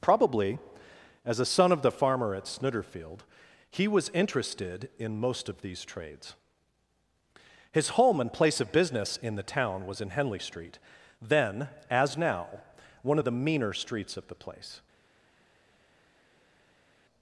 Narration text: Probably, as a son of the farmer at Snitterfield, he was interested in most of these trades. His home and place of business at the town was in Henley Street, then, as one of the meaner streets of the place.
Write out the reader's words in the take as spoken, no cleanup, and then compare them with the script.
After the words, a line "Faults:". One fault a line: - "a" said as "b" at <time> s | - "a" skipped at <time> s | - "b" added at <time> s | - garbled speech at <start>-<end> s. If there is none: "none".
Probably, as a son of the farmer at Snitterfield, he was interested in most of these trades. His home and place of business in the town was in Henley Street, then, as now, one of the meaner streets of the place.
Faults:
- "at" said as "in" at 9.2 s
- "now" added at 12.2 s